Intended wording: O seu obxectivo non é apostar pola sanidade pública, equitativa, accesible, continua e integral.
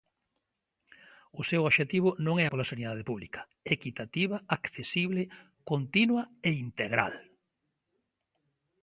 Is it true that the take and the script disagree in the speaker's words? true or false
true